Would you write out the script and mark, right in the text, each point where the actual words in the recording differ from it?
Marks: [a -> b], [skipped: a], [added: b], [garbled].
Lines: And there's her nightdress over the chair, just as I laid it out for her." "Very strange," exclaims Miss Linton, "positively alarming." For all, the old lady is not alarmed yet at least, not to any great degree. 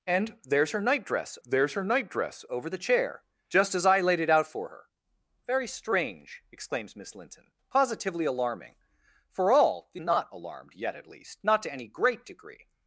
And there's her nightdress [added: there's her nightdress] over the chair, just as I laid it out for her." "Very strange," exclaims Miss Linton, "positively alarming." For all, the [skipped: old lady is] not alarmed yet at least, not to any great degree.